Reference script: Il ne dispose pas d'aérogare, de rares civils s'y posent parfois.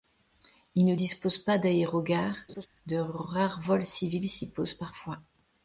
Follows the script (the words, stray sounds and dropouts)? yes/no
no